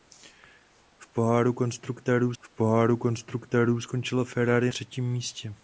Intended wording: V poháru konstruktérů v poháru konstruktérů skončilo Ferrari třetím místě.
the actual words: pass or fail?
pass